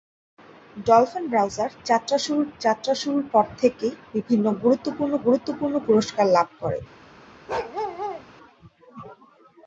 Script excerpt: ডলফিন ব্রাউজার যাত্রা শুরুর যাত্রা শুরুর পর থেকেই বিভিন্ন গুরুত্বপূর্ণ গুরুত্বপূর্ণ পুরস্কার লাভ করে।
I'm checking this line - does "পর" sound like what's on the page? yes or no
yes